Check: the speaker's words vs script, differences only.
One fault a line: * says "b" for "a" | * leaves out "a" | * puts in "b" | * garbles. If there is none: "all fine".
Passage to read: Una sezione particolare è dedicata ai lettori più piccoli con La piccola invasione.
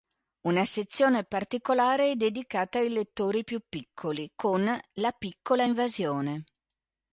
all fine